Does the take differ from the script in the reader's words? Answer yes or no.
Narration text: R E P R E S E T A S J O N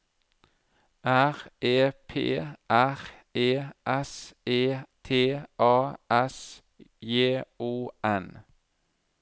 no